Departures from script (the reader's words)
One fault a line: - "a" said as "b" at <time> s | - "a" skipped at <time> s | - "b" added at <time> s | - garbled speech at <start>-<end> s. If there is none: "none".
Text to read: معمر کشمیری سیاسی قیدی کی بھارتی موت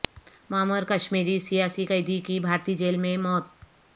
- "جیل میں" added at 2.8 s